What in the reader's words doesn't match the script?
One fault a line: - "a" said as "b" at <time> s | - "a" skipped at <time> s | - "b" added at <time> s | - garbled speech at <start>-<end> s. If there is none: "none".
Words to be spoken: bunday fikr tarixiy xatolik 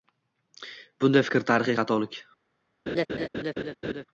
none